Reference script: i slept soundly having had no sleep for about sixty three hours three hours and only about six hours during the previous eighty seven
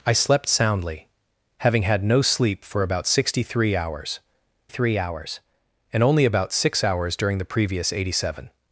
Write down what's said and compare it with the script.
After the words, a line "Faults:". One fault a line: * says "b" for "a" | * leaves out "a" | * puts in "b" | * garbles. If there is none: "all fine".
i slept soundly having had no sleep for about sixty three hours three hours and only about six hours during the previous eighty seven
Faults:
all fine